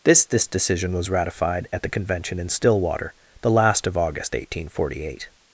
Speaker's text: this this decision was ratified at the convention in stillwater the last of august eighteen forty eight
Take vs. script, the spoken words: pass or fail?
pass